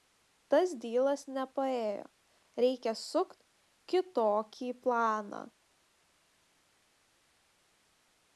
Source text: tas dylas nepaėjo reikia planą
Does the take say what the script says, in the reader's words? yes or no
no